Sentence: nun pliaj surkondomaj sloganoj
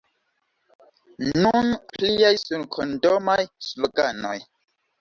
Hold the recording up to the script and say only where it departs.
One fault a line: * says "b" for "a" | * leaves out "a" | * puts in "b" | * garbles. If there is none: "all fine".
all fine